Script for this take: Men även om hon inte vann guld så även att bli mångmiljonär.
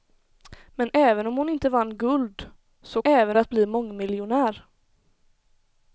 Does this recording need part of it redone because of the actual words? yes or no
no